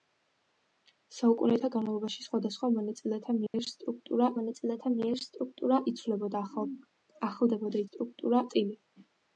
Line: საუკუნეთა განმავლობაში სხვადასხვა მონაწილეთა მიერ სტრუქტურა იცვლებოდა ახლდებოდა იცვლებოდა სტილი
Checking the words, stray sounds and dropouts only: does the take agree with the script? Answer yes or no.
no